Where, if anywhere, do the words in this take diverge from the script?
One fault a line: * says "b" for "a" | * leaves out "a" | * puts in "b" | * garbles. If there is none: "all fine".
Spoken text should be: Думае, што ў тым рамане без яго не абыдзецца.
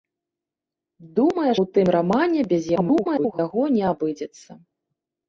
* leaves out "што"
* garbles